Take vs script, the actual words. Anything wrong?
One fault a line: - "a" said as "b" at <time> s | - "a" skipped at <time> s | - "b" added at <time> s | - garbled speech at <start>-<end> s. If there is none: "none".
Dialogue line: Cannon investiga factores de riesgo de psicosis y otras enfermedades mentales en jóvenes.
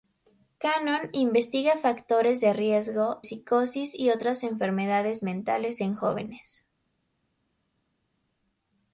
- "de" skipped at 3.2 s